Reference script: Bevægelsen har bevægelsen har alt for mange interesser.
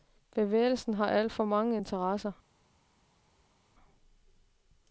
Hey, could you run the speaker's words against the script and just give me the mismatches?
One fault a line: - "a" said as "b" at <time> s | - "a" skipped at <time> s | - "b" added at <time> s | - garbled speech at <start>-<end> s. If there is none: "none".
- "bevægelsen har" skipped at 1.1 s